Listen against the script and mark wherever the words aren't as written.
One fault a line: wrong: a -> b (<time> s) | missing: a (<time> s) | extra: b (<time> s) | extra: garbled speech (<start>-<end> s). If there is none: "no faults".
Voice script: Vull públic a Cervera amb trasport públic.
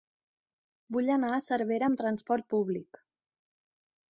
wrong: públic -> anar (1.2 s)